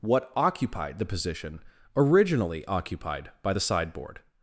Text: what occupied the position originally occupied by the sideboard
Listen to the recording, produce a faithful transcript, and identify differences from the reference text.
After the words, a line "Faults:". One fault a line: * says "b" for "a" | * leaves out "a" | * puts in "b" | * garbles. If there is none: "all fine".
what occupied the position originally occupied by the sideboard
Faults:
all fine